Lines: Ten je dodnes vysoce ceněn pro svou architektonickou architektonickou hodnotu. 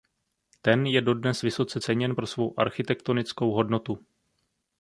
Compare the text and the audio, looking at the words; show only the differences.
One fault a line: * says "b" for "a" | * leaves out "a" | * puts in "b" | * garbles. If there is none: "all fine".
* leaves out "architektonickou"